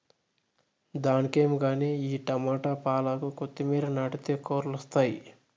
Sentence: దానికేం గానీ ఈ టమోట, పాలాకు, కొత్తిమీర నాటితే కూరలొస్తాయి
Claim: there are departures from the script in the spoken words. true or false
false